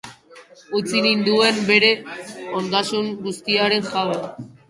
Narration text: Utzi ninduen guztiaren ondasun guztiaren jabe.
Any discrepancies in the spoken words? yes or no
yes